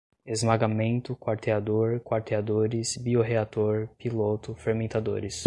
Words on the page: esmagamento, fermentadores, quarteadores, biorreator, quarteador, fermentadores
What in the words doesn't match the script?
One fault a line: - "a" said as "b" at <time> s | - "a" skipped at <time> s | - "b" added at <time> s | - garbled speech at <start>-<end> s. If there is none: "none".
- "fermentadores" said as "quarteador" at 1.1 s
- "quarteador" said as "piloto" at 4.0 s